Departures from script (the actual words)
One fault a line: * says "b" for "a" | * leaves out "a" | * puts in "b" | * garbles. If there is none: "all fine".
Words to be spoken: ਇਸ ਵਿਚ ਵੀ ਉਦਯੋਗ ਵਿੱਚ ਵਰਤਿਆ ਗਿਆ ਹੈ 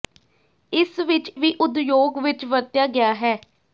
all fine